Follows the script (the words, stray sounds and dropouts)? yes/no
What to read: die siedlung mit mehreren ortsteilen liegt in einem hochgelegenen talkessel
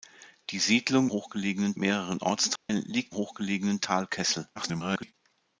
no